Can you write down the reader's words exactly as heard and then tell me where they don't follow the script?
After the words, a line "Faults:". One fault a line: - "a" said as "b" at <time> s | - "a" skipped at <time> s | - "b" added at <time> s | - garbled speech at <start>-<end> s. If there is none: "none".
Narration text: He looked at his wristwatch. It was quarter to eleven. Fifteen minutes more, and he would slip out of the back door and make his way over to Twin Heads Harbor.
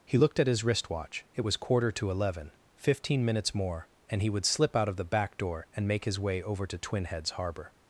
He looked at his wristwatch. It was quarter to eleven. Fifteen minutes more, and he would slip out of the back door and make his way over to Twin Heads Harbor.
Faults:
none